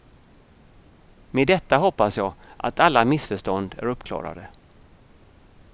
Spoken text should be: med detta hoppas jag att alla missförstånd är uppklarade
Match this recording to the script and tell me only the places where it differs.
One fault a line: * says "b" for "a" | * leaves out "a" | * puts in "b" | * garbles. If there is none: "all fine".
all fine